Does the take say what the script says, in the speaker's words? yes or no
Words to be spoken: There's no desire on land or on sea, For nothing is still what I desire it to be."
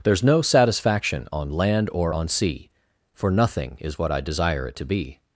no